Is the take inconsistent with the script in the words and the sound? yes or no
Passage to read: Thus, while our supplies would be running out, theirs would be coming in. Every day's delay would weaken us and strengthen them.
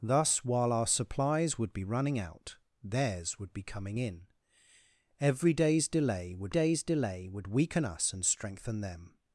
yes